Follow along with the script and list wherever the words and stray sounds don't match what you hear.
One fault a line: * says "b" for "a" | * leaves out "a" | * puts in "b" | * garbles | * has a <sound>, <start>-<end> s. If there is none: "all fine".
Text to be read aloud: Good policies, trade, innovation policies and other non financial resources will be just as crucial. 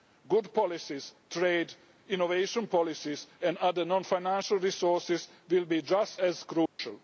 * has a dropout, 6.7-6.8 s